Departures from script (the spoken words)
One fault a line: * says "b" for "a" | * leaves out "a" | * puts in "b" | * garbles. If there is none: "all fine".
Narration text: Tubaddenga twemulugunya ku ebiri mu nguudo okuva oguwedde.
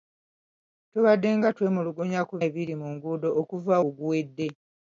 all fine